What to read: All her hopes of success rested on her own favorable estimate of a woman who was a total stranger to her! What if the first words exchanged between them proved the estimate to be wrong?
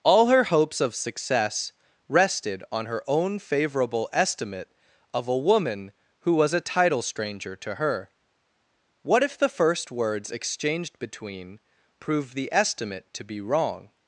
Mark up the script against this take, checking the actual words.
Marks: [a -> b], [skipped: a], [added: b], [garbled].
All her hopes of success rested on her own favorable estimate of a woman who was a [total -> title] stranger to her! What if the first words exchanged between [skipped: them] proved the estimate to be wrong?